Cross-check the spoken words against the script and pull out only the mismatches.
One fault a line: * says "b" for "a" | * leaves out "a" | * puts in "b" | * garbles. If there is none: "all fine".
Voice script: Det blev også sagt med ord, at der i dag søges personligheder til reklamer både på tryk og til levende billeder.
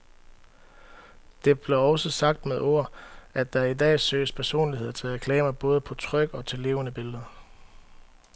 all fine